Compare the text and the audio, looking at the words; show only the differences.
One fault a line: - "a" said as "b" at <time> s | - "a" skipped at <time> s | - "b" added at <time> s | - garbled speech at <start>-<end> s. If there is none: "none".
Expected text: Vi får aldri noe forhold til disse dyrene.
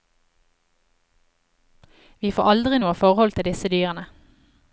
none